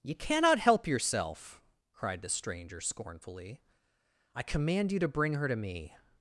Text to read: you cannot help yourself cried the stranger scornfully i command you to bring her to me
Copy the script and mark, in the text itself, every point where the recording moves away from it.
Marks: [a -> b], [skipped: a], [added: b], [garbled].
you cannot help yourself cried the stranger scornfully i command you to bring her to me